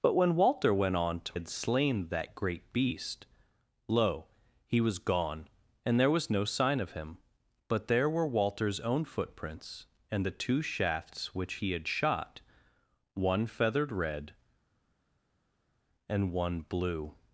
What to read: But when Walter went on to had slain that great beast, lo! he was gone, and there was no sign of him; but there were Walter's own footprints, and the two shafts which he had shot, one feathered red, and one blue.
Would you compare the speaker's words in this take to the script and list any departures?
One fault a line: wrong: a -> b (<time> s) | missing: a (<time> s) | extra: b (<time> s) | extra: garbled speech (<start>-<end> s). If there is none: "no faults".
no faults